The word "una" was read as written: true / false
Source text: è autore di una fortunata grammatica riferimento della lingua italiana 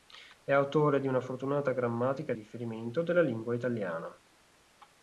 true